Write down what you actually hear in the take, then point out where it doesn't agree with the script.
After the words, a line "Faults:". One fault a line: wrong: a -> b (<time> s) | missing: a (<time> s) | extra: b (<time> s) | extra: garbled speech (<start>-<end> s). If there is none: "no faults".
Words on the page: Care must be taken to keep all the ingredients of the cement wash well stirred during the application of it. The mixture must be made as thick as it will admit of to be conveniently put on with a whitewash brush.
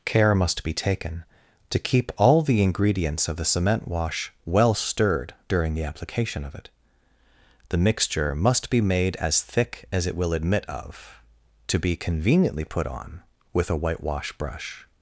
Care must be taken to keep all the ingredients of the cement wash well stirred during the application of it. The mixture must be made as thick as it will admit of to be conveniently put on with a whitewash brush.
Faults:
no faults